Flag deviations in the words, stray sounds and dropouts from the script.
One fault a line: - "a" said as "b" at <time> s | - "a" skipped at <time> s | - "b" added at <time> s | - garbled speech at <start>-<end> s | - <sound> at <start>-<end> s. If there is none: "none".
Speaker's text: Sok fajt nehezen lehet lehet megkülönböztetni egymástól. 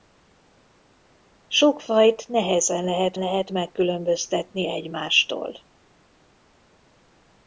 none